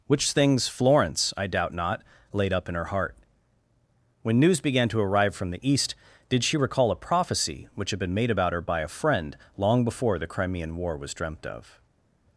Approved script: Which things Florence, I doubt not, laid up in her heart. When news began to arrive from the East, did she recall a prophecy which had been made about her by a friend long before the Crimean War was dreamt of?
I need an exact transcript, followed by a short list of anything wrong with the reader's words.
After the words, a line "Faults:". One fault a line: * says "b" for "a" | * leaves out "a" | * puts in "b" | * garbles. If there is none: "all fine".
Which things Florence, I doubt not, laid up in her heart. When news began to arrive from the East, did she recall a prophecy which had been made about her by a friend long before the Crimean War was dreamt of?
Faults:
all fine